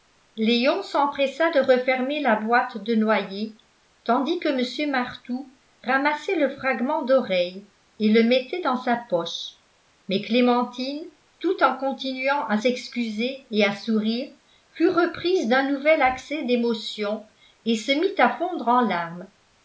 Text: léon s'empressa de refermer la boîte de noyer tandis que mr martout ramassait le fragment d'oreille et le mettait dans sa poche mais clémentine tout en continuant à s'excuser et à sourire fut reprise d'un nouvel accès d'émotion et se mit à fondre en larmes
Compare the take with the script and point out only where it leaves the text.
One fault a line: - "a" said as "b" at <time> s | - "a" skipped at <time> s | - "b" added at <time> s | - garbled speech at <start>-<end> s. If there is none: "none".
none